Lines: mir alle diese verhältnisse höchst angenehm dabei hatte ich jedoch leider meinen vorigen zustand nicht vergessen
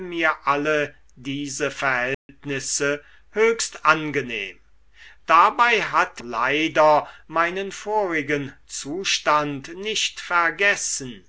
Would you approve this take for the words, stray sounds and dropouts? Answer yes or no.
no